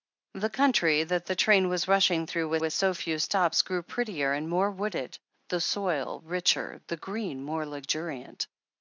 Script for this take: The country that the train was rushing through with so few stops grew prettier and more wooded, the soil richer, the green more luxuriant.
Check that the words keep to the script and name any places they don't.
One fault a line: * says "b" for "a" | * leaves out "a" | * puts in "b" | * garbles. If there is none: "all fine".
* puts in "with"